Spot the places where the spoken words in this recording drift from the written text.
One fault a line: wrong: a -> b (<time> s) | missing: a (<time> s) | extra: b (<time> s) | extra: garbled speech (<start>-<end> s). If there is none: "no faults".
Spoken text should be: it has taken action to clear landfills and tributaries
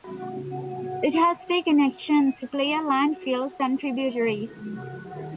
no faults